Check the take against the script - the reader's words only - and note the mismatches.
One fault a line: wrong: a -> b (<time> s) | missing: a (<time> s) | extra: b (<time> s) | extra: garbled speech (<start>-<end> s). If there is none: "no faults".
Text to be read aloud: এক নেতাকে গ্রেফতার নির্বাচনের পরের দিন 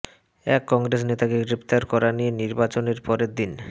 extra: কংগ্রেস (0.7 s)
extra: করা নিয়ে (1.9 s)